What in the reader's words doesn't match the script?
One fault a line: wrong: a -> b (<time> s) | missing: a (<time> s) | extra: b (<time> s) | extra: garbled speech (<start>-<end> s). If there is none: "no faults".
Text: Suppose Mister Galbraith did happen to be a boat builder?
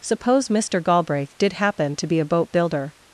no faults